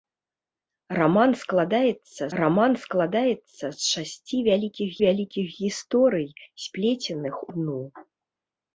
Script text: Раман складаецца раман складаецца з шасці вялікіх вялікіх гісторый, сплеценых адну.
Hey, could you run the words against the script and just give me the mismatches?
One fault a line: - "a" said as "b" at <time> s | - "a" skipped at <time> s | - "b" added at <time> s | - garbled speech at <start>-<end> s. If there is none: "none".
none